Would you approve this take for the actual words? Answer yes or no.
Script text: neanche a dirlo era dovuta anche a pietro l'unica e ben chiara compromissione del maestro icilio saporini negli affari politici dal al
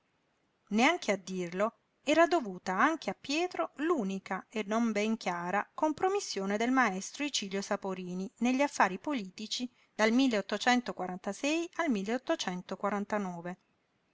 no